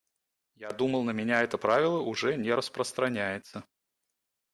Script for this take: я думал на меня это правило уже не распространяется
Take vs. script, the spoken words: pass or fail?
pass